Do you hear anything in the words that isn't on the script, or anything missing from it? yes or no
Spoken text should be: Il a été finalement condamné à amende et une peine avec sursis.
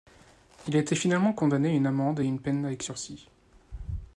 yes